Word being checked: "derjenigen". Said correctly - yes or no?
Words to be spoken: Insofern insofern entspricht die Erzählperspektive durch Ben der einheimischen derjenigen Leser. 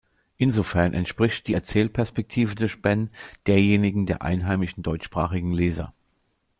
no